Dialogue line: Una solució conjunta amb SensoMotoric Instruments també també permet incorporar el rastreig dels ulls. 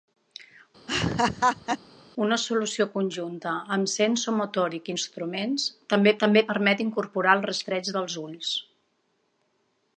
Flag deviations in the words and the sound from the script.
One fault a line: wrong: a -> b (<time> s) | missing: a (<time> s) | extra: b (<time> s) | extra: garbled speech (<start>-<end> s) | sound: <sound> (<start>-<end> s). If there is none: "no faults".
sound: laugh (0.9-1.8 s)